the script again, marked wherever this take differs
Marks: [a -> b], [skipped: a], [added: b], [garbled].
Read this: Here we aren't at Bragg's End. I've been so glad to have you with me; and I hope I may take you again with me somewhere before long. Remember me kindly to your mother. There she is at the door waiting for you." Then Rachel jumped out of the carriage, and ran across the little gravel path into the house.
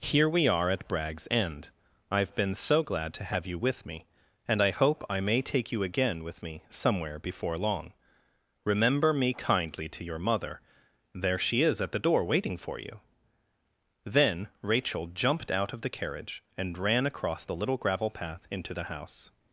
Here we [aren't -> are] at Bragg's End. I've been so glad to have you with me; and I hope I may take you again with me somewhere before long. Remember me kindly to your mother. There she is at the door waiting for you." Then Rachel jumped out of the carriage, and ran across the little gravel path into the house.